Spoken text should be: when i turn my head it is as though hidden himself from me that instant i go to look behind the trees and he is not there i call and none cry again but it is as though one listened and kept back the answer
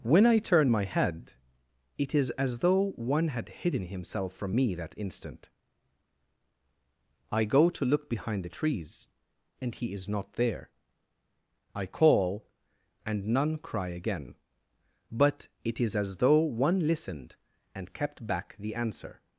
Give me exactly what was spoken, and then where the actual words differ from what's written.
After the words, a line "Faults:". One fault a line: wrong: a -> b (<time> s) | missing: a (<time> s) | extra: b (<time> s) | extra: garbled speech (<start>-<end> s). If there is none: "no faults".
when i turn my head it is as though one had hidden himself from me that instant i go to look behind the trees and he is not there i call and none cry again but it is as though one listened and kept back the answer
Faults:
extra: one had (3.0 s)